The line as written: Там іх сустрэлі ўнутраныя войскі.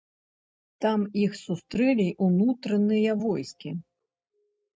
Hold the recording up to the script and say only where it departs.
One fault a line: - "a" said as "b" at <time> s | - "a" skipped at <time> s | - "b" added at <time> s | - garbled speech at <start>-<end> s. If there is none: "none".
none